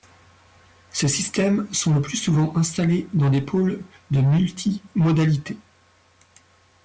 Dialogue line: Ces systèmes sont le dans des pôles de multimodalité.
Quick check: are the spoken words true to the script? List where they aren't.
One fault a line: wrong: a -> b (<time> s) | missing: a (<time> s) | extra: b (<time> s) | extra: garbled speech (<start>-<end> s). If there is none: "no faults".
extra: plus souvent installés (2.0 s)